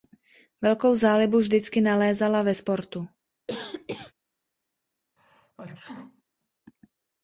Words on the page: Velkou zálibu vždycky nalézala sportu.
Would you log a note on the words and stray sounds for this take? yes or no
yes